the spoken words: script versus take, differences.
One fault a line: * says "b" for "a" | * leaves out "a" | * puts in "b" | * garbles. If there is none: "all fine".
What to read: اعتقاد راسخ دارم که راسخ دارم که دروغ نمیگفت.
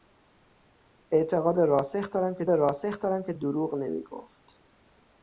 all fine